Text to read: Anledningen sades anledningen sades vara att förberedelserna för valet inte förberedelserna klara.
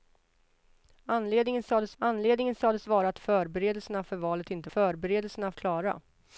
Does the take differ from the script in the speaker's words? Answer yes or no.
no